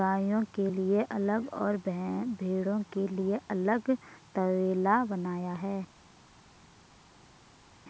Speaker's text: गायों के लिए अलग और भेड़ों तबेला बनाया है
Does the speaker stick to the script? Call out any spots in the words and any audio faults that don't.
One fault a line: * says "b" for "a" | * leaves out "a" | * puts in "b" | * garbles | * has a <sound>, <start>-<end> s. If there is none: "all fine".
* puts in "के लिए अलग"